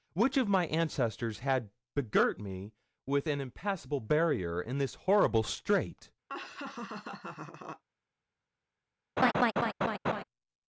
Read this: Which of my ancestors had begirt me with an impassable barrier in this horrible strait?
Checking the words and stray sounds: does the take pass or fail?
fail